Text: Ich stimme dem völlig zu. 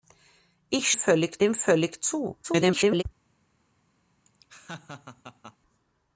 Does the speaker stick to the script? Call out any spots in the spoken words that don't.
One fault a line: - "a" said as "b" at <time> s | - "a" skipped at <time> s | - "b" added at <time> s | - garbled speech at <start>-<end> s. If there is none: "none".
- "stimme" said as "völlig" at 0.9 s
- garbled speech at 2.4-3.0 s